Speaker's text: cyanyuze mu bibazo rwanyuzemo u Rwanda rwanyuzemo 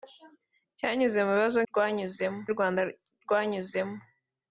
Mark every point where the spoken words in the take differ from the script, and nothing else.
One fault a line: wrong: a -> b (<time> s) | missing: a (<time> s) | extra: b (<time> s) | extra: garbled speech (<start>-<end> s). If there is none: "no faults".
no faults